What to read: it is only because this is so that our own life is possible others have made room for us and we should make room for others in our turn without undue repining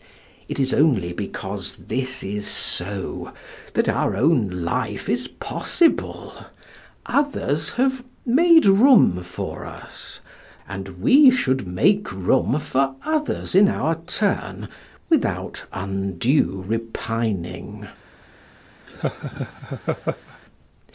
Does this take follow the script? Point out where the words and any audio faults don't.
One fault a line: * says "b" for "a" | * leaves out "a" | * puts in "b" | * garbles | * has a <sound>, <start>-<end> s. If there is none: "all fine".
* has a laugh, 18.9-20.4 s